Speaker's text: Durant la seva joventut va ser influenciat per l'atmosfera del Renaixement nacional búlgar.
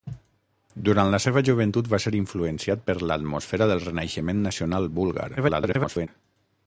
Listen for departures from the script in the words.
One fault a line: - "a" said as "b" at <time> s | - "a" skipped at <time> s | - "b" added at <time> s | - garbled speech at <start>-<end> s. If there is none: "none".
- garbled speech at 5.4-6.1 s